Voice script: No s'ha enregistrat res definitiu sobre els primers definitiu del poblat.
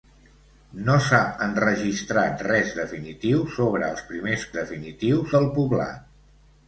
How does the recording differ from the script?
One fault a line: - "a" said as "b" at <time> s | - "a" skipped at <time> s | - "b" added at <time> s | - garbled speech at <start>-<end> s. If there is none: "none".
none